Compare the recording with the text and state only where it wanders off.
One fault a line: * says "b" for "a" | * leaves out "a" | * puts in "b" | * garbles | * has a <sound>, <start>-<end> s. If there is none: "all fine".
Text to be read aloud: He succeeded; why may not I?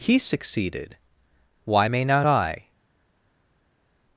all fine